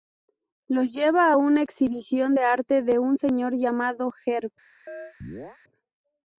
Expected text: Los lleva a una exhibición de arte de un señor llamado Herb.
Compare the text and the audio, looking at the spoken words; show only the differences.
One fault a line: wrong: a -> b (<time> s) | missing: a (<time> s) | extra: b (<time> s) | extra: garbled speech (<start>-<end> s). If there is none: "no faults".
no faults